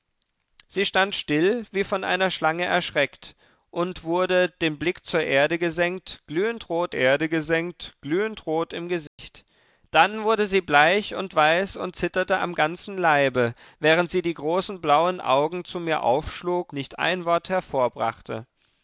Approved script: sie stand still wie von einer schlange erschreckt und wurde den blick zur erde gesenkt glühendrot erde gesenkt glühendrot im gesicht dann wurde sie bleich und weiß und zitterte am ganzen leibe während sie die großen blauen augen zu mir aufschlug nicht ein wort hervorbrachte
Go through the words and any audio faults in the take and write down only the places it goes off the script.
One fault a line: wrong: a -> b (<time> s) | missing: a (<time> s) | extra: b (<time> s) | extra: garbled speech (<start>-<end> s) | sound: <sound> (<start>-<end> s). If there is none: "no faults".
sound: dropout (9.1-9.2 s)